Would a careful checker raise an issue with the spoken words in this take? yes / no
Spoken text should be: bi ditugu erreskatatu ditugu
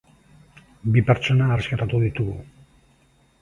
yes